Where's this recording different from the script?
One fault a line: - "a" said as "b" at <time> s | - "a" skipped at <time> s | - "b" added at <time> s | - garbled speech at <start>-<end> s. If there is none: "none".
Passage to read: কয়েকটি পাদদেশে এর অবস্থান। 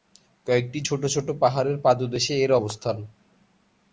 - "ছোট ছোট পাহাড়ের" added at 0.9 s